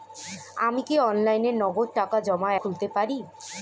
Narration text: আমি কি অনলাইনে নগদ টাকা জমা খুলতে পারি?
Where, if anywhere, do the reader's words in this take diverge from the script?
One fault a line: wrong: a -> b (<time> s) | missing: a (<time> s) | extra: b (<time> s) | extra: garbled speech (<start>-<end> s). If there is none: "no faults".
no faults